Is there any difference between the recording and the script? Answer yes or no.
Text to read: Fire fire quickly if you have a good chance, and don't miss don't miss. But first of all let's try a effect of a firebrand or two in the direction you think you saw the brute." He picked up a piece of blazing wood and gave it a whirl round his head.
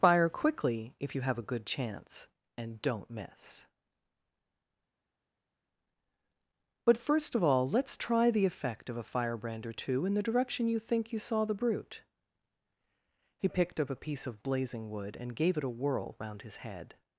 yes